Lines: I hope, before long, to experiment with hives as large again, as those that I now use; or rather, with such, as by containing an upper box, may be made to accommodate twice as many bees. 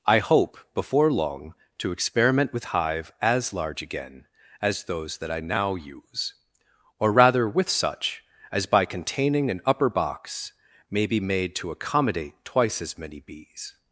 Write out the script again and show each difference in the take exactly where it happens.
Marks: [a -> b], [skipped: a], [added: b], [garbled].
I hope, before long, to experiment with [hives -> hive] as large again, as those that I now use; or rather, with such, as by containing an upper box, may be made to accommodate twice as many bees.